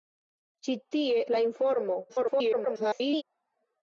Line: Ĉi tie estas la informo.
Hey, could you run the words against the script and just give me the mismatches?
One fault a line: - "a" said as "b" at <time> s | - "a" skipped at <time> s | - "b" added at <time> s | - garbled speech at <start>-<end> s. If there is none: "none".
- "estas" skipped at 1.2 s
- garbled speech at 2.1-3.2 s